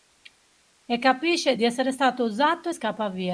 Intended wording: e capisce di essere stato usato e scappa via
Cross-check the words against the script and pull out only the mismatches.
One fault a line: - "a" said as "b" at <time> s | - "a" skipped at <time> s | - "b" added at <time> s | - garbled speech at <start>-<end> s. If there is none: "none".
none